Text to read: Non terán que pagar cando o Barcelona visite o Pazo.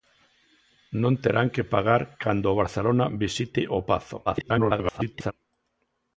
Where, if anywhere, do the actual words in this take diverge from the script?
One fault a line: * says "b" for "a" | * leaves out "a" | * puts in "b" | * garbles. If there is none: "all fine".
* garbles